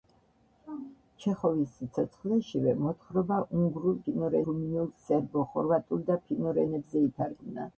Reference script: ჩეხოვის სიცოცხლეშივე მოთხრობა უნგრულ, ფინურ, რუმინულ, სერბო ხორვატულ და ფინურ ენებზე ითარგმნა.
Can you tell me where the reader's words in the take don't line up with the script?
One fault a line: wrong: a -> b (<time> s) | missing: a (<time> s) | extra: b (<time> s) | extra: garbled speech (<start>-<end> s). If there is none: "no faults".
no faults